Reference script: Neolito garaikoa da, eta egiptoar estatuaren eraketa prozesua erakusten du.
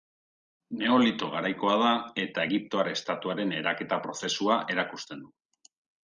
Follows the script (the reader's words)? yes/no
yes